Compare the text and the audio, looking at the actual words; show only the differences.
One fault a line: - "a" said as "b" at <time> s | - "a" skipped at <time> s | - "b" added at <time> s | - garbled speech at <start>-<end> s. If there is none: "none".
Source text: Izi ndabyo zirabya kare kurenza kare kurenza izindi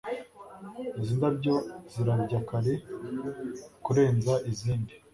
- "kare kurenza" skipped at 4.3 s